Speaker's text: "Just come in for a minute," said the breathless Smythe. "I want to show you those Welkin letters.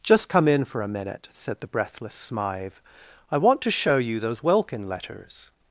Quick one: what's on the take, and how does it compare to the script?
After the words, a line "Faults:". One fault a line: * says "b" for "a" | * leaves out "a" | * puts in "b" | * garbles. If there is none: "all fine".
"Just come in for a minute," said the breathless Smythe. "I want to show you those Welkin letters.
Faults:
all fine